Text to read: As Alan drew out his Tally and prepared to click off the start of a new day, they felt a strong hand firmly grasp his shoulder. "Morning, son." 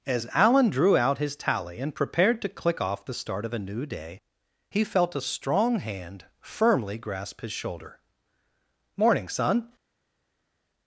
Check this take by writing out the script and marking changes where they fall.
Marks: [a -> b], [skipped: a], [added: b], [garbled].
As Alan drew out his Tally and prepared to click off the start of a new day, [they -> he] felt a strong hand firmly grasp his shoulder. "Morning, son."